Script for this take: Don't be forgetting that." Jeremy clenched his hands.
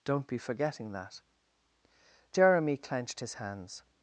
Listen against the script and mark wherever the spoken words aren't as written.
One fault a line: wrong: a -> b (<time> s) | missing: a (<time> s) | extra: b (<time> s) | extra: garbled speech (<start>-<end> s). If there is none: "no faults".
no faults